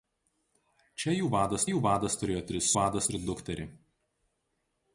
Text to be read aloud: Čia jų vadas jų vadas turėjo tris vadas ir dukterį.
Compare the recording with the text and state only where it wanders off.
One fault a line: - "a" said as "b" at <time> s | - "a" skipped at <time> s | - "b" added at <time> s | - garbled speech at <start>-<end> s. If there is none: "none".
none